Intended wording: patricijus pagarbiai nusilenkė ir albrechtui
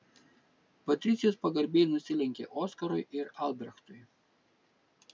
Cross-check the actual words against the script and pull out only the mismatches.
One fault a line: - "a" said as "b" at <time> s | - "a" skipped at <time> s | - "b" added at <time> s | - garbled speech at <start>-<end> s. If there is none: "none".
- "oskarui" added at 2.6 s